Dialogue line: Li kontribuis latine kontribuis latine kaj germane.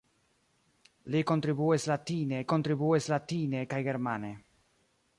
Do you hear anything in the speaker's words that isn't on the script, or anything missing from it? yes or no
no